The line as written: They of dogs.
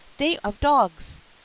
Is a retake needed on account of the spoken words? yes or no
no